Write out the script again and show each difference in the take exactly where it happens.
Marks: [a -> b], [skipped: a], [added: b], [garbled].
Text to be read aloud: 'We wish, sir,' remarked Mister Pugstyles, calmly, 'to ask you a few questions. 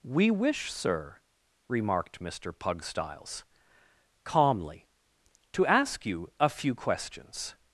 'We wish, sir,' remarked Mister Pugstyles, calmly, 'to ask you a few questions.